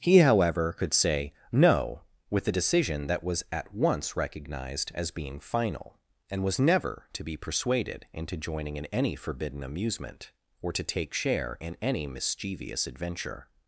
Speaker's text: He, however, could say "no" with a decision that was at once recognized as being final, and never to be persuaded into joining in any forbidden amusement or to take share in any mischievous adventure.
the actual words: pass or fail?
fail